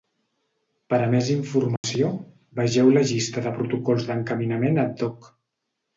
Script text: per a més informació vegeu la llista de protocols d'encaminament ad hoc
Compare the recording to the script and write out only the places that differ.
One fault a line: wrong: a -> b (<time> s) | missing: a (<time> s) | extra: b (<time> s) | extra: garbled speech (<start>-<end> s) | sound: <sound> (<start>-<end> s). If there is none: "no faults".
sound: dropout (1.8-1.8 s)